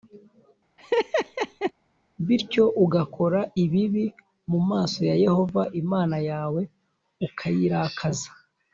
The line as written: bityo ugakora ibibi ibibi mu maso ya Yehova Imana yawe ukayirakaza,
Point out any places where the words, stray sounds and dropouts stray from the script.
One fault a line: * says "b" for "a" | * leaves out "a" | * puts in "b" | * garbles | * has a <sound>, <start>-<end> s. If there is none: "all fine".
* has a laugh, 0.8-1.7 s
* leaves out "ibibi"